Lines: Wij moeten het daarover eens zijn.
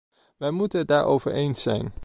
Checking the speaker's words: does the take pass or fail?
pass